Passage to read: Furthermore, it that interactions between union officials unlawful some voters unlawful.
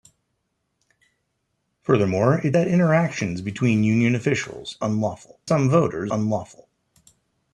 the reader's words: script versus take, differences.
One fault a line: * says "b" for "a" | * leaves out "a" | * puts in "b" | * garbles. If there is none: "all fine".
all fine